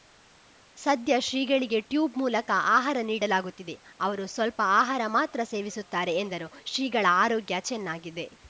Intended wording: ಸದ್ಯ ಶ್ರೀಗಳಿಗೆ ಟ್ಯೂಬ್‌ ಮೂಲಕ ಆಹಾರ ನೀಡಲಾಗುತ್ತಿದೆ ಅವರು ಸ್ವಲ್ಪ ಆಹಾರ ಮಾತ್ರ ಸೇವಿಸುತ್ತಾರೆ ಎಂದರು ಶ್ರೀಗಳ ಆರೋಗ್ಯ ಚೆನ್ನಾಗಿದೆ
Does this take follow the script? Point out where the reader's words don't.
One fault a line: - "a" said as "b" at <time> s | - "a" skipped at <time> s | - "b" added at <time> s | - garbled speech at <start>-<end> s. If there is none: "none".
none